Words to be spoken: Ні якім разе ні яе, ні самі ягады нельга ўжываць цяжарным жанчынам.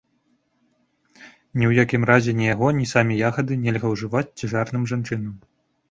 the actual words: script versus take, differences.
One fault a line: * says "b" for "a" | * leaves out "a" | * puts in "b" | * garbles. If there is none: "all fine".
* puts in "ў"
* says "яго" for "яе"